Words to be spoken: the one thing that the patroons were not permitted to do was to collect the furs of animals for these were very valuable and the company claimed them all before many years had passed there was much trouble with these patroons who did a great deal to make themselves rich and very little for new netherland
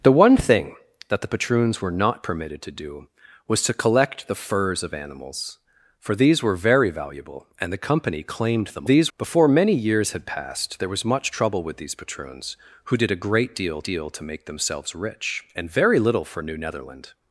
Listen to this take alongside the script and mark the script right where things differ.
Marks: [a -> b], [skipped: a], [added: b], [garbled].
the one thing that the patroons were not permitted to do was to collect the furs of animals for these were very valuable and the company claimed them [all -> these] before many years had passed there was much trouble with these patroons who did a great deal [added: deal] to make themselves rich and very little for new netherland